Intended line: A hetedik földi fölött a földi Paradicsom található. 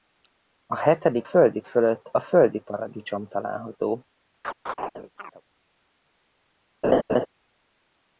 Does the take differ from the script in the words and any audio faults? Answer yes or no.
yes